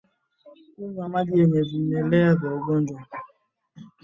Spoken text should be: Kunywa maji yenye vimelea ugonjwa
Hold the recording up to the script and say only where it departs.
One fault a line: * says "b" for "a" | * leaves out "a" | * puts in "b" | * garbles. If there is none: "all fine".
* puts in "vya"